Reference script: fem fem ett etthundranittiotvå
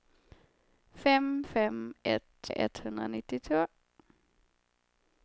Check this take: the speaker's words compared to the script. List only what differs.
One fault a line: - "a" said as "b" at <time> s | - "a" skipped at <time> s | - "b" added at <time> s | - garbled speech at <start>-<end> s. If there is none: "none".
none